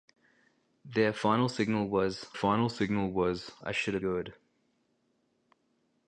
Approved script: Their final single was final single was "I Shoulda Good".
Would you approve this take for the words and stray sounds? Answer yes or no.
yes